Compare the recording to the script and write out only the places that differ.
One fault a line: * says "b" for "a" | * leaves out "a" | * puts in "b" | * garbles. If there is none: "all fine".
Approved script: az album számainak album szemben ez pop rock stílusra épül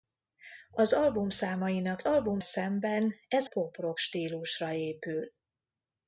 all fine